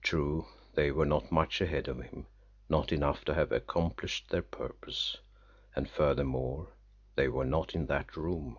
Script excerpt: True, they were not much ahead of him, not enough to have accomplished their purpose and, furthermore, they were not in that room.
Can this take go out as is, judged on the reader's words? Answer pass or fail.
pass